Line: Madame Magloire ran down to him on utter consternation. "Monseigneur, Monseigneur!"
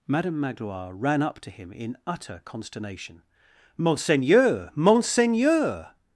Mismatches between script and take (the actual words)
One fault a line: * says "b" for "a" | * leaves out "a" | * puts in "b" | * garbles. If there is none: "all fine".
* says "up" for "down"
* says "in" for "on"